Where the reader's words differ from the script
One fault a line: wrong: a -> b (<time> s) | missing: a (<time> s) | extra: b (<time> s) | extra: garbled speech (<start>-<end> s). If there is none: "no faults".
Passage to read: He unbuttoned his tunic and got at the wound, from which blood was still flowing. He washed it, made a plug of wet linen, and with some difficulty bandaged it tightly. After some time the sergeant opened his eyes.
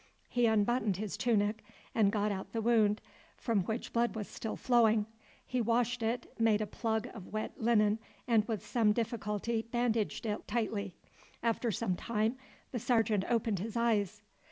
no faults